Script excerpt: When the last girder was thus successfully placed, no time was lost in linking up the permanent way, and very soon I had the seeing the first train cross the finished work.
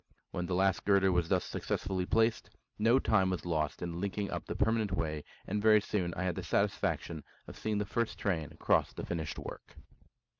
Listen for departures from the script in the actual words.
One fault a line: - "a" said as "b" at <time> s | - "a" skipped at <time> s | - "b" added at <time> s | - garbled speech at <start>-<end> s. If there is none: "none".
- "satisfaction of" added at 6.4 s